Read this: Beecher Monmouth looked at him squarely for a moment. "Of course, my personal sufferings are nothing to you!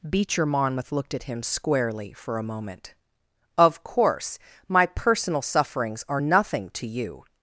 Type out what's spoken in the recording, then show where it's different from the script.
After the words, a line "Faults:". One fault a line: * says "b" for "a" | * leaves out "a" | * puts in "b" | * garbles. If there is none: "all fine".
Beecher Monmouth looked at him squarely for a moment. "Of course, my personal sufferings are nothing to you!
Faults:
all fine